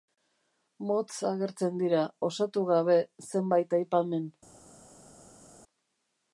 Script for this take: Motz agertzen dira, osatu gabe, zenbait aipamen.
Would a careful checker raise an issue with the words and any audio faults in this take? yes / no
no